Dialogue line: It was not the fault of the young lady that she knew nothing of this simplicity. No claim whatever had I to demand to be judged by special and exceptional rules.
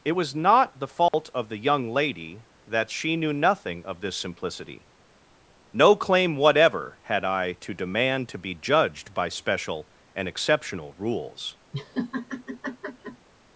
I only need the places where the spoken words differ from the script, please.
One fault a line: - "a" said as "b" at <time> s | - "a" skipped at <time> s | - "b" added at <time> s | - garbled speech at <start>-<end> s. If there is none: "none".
none